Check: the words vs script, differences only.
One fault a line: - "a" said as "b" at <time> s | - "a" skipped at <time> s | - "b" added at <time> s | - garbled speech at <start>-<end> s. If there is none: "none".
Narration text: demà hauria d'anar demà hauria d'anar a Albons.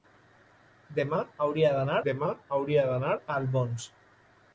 none